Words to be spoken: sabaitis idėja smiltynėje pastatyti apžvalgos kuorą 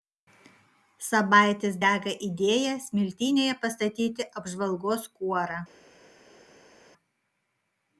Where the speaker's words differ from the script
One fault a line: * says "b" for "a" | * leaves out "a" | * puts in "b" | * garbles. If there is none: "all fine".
* puts in "dega"